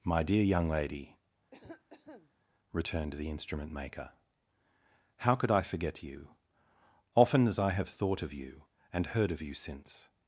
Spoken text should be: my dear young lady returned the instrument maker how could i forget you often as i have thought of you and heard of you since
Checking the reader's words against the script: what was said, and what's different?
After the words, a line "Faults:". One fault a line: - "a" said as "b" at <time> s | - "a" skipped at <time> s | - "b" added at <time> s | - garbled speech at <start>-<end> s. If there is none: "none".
my dear young lady returned the instrument maker how could i forget you often as i have thought of you and heard of you since
Faults:
none